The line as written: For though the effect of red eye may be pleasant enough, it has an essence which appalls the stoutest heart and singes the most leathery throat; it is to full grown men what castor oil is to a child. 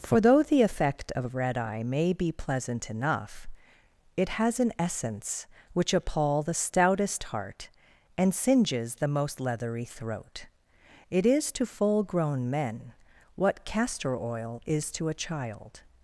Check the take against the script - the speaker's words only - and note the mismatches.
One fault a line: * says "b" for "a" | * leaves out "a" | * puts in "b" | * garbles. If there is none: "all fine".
* says "appall" for "appalls"